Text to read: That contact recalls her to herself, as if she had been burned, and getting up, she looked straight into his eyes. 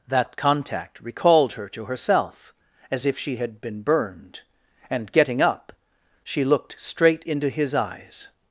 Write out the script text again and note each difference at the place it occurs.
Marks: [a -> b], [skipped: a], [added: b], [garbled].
That contact [recalls -> recalled] her to herself, as if she had been burned, and getting up, she looked straight into his eyes.